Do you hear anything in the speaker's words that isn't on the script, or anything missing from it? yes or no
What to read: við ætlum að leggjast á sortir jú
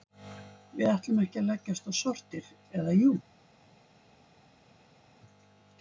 yes